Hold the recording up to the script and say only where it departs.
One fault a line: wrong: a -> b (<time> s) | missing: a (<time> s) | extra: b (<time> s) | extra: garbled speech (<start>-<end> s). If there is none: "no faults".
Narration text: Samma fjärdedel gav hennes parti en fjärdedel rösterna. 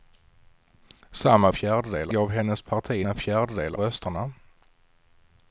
no faults